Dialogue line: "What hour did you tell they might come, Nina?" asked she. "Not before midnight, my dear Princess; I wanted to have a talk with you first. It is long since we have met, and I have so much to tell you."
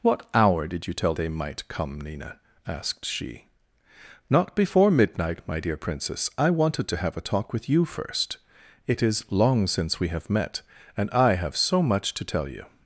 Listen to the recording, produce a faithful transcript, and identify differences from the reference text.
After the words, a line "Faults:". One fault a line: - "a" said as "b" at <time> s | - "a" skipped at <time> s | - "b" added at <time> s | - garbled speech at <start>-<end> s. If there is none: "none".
"What hour did you tell they might come, Nina?" asked she. "Not before midnight, my dear Princess; I wanted to have a talk with you first. It is long since we have met, and I have so much to tell you."
Faults:
none